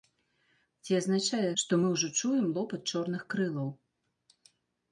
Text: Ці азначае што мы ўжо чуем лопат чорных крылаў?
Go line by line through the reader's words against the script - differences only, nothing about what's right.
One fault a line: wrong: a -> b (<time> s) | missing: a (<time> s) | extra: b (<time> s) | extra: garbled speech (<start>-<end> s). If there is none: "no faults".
no faults